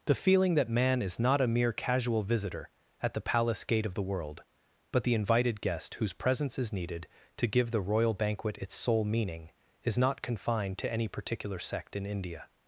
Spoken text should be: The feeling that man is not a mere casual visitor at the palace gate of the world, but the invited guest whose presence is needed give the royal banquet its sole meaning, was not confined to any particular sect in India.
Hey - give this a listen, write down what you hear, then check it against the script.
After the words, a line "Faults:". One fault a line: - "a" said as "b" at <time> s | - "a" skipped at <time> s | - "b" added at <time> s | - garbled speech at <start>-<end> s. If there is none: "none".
The feeling that man is not a mere casual visitor at the palace gate of the world, but the invited guest whose presence is needed to give the royal banquet its sole meaning, is not confined to any particular sect in India.
Faults:
- "to" added at 7.4 s
- "was" said as "is" at 9.8 s